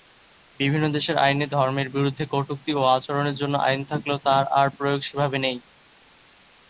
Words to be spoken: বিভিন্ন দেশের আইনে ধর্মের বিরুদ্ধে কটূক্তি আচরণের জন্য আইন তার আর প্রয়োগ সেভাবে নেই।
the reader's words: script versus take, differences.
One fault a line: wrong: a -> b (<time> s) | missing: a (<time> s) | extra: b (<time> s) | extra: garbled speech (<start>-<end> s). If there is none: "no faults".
extra: ও (2.8 s)
extra: থাকলেও (3.9 s)